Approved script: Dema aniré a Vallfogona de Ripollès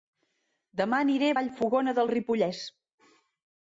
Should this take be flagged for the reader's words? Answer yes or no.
no